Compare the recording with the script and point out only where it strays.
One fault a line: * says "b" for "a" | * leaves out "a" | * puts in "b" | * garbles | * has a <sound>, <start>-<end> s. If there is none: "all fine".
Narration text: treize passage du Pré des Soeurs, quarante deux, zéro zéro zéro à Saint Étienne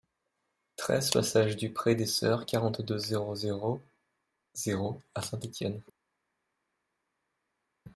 all fine